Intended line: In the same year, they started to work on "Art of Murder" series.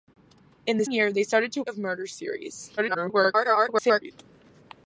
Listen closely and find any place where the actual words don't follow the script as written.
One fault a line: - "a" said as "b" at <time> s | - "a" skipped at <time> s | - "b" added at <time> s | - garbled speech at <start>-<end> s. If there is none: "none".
- "same" skipped at 0.9 s
- "work on Art" skipped at 1.6 s
- garbled speech at 2.8-4.1 s